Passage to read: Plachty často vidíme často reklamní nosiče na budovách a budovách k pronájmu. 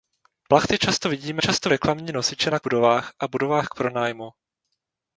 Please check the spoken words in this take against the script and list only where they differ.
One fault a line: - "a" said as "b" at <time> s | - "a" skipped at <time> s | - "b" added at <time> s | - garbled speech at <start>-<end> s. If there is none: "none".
none